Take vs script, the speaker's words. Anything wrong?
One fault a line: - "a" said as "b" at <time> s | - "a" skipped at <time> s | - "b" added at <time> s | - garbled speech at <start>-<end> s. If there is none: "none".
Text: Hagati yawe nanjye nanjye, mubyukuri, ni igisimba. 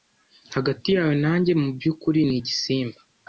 - "nanjye" skipped at 1.5 s